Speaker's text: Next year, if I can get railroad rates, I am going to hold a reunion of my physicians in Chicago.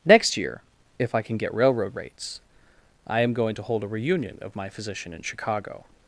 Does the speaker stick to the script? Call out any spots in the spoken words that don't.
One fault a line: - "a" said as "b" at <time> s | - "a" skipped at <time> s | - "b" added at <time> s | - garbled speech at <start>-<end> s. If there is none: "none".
- "physicians" said as "physician" at 4.7 s